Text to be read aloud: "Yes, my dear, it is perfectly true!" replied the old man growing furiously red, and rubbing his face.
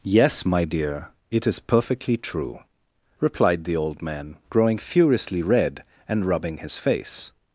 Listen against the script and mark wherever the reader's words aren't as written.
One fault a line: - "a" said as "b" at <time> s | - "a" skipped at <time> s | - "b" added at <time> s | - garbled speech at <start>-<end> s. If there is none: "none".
none